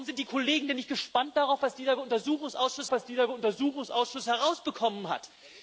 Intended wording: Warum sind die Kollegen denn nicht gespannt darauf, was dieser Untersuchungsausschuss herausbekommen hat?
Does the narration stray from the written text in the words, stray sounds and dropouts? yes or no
yes